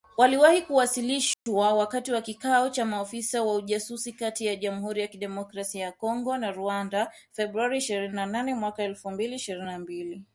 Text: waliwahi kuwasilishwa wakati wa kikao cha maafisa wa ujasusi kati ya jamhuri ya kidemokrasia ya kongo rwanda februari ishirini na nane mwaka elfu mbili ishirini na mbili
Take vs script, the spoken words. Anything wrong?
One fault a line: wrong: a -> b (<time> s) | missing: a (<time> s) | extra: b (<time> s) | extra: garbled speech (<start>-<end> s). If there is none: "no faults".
extra: na (6.4 s)